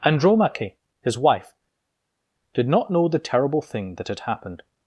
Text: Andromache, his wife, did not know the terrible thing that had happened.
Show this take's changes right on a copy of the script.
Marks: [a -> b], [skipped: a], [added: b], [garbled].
Andromache, his wife, did not know the terrible thing that had happened.